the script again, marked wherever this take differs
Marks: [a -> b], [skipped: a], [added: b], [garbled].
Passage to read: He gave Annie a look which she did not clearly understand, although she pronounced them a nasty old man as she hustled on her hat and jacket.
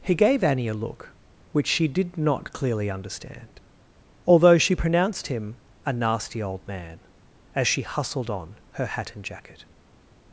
He gave Annie a look which she did not clearly understand, although she pronounced [them -> him] a nasty old man as she hustled on her hat and jacket.